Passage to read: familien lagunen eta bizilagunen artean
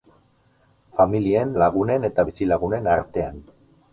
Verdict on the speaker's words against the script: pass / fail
pass